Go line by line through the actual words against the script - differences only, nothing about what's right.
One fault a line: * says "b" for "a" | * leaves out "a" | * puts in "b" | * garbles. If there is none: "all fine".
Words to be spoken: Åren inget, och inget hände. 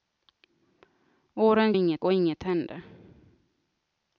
all fine